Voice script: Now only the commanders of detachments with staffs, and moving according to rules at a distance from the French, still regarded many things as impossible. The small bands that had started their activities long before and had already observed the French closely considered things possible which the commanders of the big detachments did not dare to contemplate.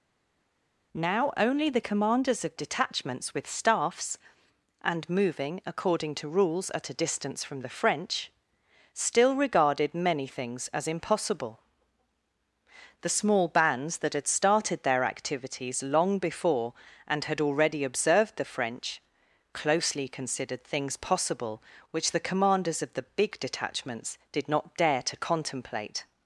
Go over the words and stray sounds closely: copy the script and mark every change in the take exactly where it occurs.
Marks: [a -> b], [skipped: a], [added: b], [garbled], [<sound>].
Now only the commanders of detachments with staffs, and moving according to rules at a distance from the French, still regarded many things as impossible. The small bands that had started their activities long before and had already observed the French closely considered things possible which the commanders of the big detachments did not dare to contemplate.